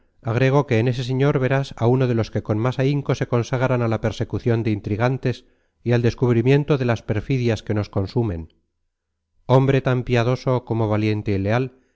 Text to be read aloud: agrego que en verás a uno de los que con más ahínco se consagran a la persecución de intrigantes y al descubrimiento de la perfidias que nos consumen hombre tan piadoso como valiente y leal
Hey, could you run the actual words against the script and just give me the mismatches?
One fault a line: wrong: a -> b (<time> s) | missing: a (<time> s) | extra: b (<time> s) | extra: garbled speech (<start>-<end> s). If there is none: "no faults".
extra: ese señor (0.9 s)
wrong: la -> las (6.8 s)